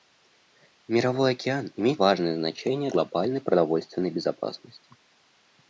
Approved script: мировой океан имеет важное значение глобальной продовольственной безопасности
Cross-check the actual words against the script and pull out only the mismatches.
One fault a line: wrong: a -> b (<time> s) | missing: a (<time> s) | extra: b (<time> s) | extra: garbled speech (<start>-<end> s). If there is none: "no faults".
no faults